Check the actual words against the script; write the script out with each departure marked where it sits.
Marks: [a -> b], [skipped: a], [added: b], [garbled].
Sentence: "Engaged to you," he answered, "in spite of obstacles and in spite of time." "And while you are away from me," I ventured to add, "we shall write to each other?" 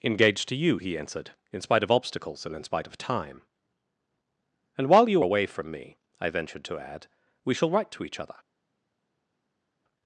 "Engaged to you," he answered, "in spite of obstacles and in spite of time." "And while you [skipped: are] away from me," I ventured to add, "we shall write to each other?"